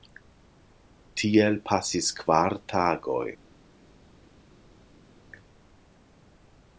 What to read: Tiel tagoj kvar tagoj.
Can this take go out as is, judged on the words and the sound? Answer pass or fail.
fail